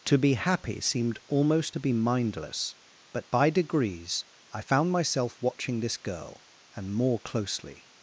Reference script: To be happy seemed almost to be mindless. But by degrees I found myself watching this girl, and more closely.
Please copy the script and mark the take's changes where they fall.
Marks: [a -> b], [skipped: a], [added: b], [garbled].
To be happy seemed almost to be mindless. But by degrees I found myself watching this girl, and more closely.